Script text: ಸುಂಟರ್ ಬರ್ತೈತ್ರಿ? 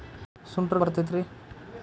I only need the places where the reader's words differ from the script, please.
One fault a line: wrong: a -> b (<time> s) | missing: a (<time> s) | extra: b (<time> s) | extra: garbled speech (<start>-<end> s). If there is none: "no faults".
no faults